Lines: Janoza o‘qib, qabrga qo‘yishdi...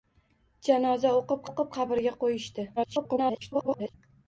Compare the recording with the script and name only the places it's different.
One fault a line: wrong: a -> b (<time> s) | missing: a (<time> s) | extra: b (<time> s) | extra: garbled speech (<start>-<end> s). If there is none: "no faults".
extra: o‘qib (1.5 s)
extra: garbled speech (2.8-3.9 s)